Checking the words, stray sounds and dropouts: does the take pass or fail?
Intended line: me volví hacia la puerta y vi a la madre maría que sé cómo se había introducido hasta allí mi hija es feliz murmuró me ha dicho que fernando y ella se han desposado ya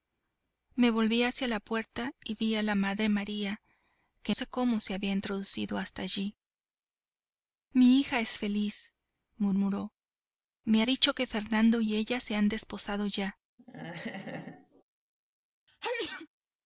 fail